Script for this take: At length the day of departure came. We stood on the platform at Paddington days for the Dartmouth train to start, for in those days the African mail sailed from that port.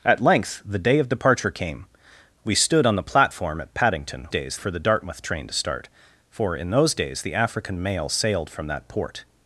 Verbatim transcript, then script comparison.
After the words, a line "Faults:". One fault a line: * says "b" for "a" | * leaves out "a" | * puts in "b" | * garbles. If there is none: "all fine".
At length the day of departure came. We stood on the platform at Paddington days for the Dartmouth train to start, for in those days the African mail sailed from that port.
Faults:
all fine